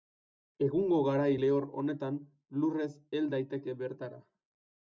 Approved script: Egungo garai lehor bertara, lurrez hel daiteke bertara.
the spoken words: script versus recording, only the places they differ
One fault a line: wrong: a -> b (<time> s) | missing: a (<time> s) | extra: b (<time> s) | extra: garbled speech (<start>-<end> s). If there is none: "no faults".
wrong: bertara -> honetan (1.8 s)